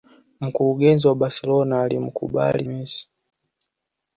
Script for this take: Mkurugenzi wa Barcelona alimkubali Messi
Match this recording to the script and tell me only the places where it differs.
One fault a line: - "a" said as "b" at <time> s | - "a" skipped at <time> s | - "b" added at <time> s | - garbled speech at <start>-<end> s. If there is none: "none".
none